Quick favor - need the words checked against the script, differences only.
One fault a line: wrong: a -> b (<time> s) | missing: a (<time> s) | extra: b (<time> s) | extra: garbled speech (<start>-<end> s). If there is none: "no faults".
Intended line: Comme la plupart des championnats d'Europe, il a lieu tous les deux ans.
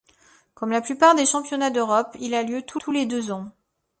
extra: tous (2.7 s)